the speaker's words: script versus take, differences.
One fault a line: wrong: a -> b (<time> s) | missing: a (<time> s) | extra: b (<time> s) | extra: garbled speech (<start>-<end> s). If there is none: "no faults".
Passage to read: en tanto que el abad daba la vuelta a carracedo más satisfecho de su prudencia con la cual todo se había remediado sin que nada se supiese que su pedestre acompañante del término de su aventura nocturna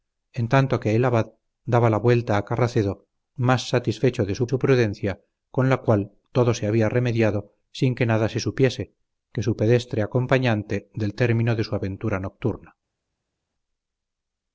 extra: su (4.5 s)